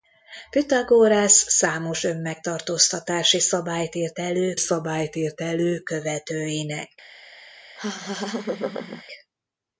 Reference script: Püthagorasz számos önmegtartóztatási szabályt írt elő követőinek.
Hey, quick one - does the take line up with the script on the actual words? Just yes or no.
no